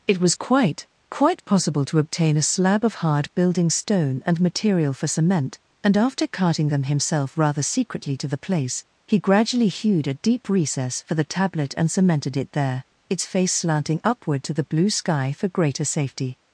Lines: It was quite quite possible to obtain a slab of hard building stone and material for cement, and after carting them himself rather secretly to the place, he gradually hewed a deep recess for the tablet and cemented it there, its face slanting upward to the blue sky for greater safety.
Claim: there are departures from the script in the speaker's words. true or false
false